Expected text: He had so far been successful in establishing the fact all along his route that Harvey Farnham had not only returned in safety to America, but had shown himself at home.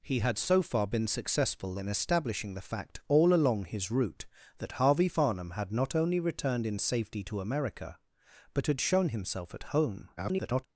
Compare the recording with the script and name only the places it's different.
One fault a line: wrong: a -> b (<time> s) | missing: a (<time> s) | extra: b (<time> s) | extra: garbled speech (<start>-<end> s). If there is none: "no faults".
extra: garbled speech (10.2-10.7 s)